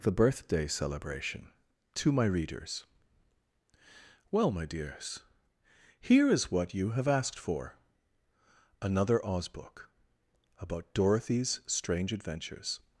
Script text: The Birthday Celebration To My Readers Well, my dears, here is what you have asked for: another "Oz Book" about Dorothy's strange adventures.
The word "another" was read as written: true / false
true